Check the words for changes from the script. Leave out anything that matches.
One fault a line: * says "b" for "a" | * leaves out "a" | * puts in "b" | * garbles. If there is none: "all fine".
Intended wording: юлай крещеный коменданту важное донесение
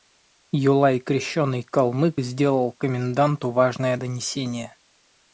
* puts in "калмык сделал"